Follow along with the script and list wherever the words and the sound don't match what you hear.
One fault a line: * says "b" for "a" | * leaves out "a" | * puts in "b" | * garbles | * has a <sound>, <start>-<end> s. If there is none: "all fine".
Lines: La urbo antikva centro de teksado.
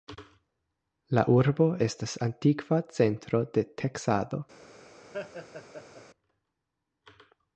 * puts in "estas"
* has a laugh, 5.1-6.0 s